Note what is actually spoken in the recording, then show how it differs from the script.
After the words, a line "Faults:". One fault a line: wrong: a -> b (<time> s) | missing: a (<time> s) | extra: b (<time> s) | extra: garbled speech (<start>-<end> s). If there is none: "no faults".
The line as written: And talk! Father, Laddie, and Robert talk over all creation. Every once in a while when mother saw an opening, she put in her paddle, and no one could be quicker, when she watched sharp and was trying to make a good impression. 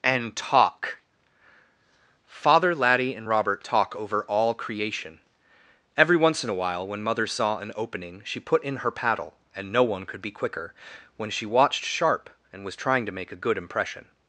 And talk! Father, Laddie, and Robert talk over all creation. Every once in a while when mother saw an opening, she put in her paddle, and no one could be quicker, when she watched sharp and was trying to make a good impression.
Faults:
no faults